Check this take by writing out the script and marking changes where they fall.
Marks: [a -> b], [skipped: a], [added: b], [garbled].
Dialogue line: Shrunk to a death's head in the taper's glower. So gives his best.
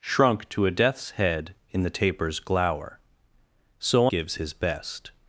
Shrunk to a death's head in the taper's glower. So gives his best.